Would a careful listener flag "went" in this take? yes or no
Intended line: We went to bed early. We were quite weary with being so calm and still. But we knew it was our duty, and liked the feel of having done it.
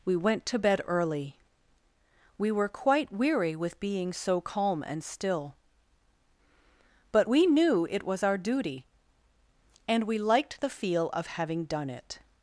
no